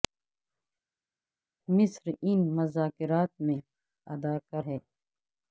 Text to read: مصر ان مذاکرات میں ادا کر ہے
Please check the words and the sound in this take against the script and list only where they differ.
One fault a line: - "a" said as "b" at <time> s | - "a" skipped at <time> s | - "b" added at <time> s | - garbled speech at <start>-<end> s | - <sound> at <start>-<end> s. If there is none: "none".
none